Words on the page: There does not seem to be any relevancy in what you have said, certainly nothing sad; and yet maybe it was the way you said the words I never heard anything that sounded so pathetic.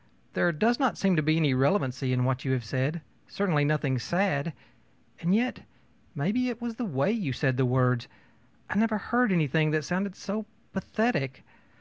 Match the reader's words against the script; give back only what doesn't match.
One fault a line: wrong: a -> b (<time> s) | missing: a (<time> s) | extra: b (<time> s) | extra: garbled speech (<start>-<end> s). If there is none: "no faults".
no faults